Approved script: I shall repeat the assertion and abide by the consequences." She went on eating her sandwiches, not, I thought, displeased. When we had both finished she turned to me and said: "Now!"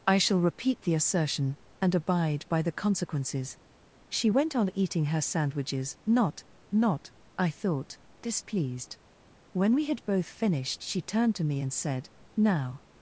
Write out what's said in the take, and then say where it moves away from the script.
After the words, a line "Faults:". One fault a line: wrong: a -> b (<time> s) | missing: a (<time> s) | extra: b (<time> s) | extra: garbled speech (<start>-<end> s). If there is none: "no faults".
I shall repeat the assertion and abide by the consequences." She went on eating her sandwiches, not not, I thought, displeased. When we had both finished she turned to me and said: "Now!"
Faults:
extra: not (6.7 s)